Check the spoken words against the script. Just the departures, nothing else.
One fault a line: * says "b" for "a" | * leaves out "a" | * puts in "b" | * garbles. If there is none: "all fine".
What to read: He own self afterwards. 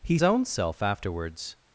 all fine